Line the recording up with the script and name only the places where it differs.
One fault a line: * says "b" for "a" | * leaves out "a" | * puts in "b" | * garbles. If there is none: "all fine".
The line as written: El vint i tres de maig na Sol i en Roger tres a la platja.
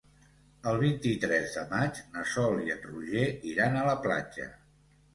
* says "iran" for "tres"